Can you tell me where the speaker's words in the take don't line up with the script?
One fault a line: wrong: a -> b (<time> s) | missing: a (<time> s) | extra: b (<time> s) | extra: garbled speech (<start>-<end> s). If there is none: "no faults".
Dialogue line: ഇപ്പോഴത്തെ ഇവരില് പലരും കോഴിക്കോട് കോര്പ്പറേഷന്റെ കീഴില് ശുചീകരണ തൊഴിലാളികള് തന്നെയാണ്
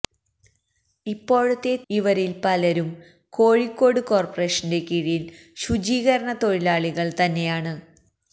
no faults